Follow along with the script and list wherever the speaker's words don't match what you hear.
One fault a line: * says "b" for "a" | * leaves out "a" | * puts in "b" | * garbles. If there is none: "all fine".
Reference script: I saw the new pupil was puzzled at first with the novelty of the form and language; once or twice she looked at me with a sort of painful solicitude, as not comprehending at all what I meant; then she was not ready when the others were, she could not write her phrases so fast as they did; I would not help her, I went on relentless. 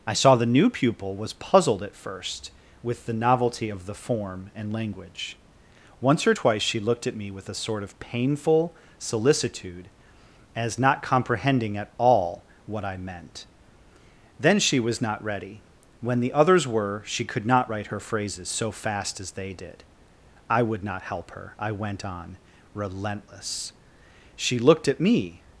* puts in "She looked at me"